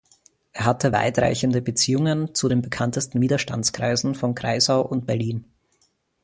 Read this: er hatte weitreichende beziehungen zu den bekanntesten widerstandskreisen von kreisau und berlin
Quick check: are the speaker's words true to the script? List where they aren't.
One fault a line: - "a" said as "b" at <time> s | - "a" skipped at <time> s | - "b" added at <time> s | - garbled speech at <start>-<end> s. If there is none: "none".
none